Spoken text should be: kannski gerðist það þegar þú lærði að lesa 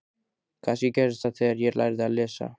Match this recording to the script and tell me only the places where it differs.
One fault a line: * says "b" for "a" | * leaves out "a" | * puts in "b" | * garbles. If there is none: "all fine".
* says "ég" for "þú"